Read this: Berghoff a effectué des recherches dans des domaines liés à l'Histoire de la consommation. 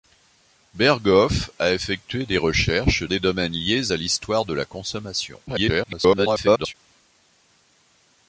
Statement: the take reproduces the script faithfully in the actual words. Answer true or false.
false